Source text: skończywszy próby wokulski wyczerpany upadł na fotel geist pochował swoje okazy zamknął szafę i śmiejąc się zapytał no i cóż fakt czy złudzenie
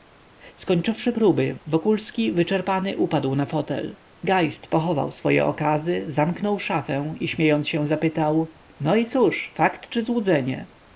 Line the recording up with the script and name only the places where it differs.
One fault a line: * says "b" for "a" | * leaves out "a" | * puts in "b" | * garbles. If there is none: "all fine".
all fine